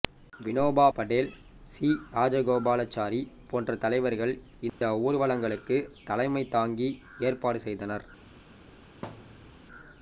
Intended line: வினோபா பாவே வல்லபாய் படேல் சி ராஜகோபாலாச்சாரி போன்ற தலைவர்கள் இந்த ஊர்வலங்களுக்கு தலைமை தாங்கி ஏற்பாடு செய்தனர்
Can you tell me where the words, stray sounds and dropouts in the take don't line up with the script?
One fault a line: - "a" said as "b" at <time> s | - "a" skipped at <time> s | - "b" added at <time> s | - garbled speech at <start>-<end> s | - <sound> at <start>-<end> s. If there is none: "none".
- "பாவே வல்லபாய்" skipped at 0.8 s
- dropout at 4.7-4.8 s
- thud at 9.0-9.6 s